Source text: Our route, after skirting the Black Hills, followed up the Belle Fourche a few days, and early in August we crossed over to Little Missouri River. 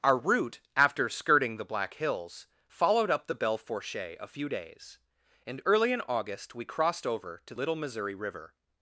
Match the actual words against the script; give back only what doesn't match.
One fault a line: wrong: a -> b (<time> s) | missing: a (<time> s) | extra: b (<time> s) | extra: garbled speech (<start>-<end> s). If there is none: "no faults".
no faults